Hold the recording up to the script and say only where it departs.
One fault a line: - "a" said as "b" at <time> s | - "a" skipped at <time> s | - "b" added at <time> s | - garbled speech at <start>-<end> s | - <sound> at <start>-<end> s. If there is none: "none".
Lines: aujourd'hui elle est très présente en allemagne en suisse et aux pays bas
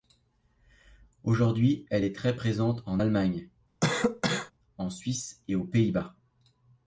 - cough at 3.8-4.5 s